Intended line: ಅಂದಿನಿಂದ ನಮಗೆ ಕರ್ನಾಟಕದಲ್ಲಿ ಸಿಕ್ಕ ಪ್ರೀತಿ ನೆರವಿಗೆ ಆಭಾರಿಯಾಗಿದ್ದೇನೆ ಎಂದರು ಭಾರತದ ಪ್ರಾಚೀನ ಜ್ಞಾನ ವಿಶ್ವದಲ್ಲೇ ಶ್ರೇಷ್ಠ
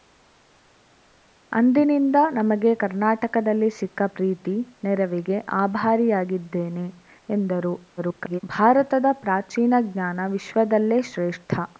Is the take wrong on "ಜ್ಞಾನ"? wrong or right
right